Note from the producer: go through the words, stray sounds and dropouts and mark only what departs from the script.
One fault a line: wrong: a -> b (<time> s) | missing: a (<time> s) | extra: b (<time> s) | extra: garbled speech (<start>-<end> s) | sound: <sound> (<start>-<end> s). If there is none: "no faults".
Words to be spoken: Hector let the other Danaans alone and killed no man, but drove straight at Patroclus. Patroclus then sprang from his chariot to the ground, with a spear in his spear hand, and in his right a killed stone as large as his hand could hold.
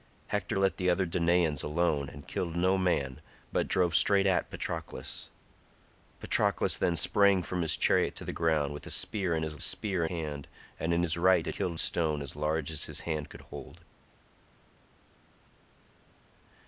no faults